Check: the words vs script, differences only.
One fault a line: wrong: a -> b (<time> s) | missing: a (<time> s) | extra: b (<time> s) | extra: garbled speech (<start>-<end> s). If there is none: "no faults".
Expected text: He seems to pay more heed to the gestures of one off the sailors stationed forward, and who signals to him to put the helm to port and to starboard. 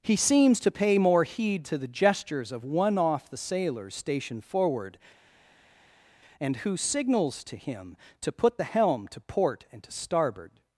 no faults